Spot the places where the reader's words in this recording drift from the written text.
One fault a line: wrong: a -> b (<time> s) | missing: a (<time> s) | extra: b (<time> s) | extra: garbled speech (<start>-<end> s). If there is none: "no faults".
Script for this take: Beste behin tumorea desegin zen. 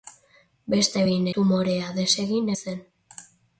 no faults